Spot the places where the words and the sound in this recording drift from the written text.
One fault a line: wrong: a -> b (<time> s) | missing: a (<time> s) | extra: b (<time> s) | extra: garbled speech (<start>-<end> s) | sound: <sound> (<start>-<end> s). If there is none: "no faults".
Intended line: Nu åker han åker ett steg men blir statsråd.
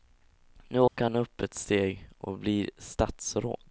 sound: dropout (0.9-1.0 s)
wrong: åker -> upp (1.1 s)
wrong: men -> och (2.2 s)